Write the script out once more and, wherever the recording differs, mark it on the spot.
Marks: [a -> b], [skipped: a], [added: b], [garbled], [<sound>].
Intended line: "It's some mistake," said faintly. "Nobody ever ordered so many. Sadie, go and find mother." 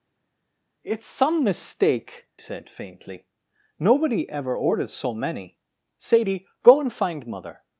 "It's some mistake," said faintly. "Nobody ever ordered so many. Sadie, go and find mother."